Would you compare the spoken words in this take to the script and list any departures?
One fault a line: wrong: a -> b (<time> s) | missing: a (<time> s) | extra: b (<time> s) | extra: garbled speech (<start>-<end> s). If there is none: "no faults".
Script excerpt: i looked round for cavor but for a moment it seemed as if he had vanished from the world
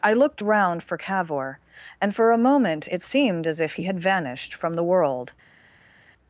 wrong: but -> and (2.0 s)